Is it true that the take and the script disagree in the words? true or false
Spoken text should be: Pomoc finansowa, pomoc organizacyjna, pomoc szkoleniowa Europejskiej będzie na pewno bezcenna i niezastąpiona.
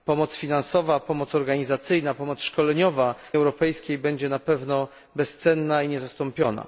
false